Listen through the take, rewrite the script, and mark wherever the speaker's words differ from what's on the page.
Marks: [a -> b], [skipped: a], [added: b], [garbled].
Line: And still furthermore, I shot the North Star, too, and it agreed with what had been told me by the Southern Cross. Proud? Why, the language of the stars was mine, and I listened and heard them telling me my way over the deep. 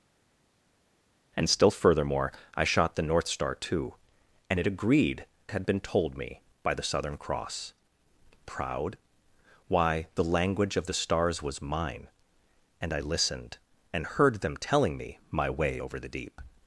And still furthermore, I shot the North Star, too, and it agreed [skipped: with what] had been told me by the Southern Cross. Proud? Why, the language of the stars was mine, and I listened and heard them telling me my way over the deep.